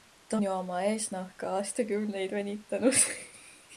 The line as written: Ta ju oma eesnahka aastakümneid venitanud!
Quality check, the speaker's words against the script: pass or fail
pass